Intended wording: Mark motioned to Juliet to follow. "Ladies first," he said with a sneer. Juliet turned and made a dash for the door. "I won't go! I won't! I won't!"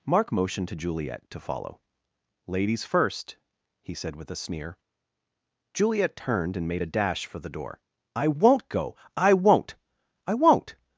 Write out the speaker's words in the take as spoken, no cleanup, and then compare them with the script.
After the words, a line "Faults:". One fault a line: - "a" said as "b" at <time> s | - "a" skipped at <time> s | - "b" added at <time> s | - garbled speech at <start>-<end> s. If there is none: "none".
Mark motioned to Juliet to follow. "Ladies first," he said with a sneer. Juliet turned and made a dash for the door. "I won't go! I won't! I won't!"
Faults:
none